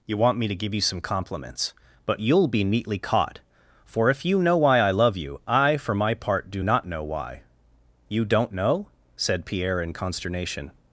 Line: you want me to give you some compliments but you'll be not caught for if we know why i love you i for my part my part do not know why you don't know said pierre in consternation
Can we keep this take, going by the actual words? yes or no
no